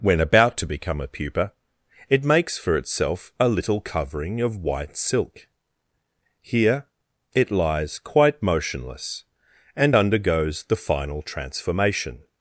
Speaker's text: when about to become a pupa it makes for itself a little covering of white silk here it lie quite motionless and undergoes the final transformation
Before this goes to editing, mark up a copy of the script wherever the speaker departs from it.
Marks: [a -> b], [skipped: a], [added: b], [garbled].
when about to become a pupa it makes for itself a little covering of white silk here it [lie -> lies] quite motionless and undergoes the final transformation